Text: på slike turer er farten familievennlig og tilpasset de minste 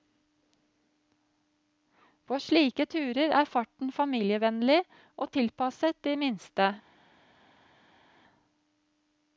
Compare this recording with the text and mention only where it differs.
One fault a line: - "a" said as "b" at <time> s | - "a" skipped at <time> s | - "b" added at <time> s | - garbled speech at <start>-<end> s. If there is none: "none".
none